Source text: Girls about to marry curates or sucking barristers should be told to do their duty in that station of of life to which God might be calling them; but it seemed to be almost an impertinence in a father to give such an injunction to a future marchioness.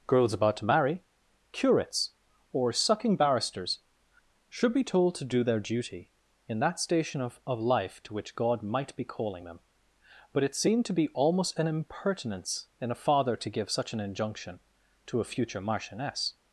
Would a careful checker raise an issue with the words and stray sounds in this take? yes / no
no